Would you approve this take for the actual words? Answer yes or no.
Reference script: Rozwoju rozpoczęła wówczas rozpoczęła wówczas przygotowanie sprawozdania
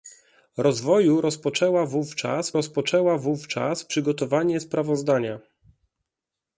yes